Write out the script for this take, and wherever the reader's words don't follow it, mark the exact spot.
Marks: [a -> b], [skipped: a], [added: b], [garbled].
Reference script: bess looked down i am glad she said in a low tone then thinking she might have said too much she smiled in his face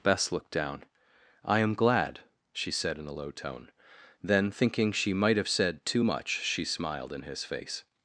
bess looked down i am glad she said in a low tone then thinking she might have said too much she smiled in his face